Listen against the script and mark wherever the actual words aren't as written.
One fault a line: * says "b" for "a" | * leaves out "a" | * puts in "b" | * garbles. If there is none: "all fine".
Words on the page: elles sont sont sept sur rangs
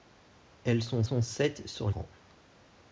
all fine